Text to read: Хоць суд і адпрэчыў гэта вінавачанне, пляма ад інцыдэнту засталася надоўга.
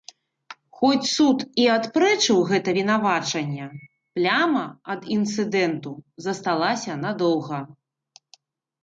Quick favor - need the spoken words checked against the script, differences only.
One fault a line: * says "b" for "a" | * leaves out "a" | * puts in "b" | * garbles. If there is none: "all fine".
all fine